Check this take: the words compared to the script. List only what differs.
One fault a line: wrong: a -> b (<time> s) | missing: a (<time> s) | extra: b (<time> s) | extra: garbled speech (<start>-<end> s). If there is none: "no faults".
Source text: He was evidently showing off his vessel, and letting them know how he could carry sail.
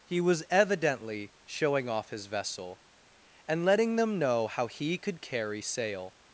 no faults